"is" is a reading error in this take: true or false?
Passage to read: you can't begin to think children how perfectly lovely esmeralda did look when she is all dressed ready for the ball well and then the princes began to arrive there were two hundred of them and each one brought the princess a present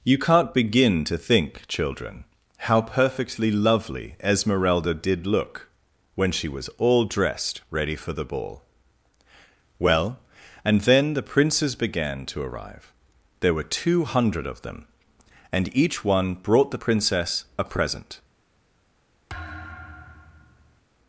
true